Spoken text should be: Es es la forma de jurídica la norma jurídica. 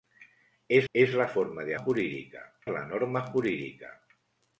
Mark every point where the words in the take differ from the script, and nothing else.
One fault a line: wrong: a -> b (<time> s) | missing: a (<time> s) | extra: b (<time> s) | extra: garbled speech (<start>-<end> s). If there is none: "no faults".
no faults